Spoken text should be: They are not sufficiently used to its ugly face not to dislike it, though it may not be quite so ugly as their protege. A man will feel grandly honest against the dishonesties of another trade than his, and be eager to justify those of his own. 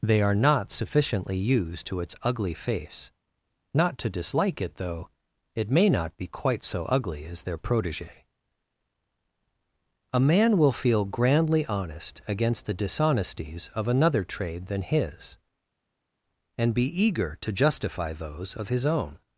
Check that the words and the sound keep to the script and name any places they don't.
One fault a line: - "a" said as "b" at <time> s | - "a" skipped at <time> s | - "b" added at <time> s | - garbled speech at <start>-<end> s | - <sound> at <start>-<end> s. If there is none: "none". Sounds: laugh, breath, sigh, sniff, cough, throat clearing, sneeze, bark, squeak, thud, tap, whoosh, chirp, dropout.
none